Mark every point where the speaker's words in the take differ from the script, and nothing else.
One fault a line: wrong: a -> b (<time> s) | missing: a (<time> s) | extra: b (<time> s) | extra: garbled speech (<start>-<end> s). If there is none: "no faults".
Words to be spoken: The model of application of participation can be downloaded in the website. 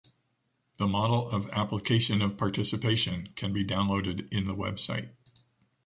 no faults